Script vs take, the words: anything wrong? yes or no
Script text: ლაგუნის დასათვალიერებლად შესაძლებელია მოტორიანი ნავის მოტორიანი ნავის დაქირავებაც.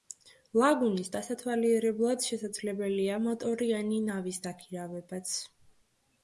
yes